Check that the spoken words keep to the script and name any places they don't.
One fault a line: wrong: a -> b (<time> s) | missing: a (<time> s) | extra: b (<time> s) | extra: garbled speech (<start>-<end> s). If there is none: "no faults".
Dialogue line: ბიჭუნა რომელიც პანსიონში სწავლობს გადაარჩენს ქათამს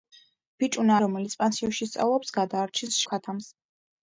no faults